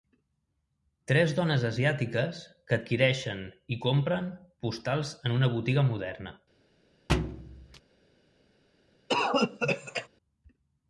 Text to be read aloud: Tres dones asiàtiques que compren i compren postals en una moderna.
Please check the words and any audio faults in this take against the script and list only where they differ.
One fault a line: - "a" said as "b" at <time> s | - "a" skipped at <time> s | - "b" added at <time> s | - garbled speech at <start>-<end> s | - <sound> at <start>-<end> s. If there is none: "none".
- "compren" said as "adquireixen" at 2.8 s
- "botiga" added at 5.6 s
- thud at 7.1-7.8 s
- cough at 9.1-10.1 s